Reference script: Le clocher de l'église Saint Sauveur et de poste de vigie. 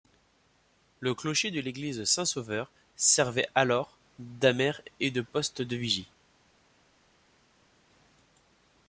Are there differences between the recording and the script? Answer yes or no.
yes